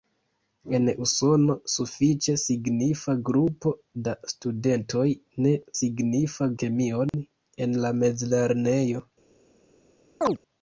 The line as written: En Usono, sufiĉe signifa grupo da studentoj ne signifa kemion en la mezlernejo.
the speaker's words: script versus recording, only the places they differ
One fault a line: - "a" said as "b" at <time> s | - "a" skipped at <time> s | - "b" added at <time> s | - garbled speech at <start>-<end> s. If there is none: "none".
none